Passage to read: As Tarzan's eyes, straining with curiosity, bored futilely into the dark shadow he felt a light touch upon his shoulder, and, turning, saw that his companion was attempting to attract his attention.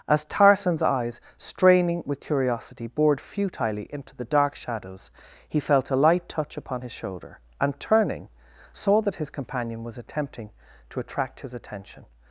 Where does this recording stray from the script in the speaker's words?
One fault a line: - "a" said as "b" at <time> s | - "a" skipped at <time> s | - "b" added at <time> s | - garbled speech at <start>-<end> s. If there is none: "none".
- "shadow" said as "shadows" at 4.6 s